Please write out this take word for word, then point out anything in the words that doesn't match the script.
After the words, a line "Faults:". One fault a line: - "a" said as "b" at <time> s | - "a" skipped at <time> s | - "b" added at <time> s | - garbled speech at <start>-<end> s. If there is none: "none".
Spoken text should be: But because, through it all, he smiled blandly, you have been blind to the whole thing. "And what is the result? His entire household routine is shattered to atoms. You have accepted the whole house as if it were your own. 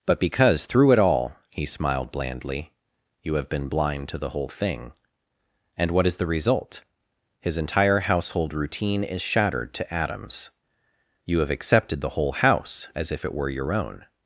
But because, through it all, he smiled blandly, you have been blind to the whole thing. "And what is the result? His entire household routine is shattered to atoms. You have accepted the whole house as if it were your own.
Faults:
none